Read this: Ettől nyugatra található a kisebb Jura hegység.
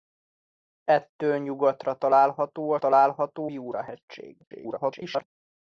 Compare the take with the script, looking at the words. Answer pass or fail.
fail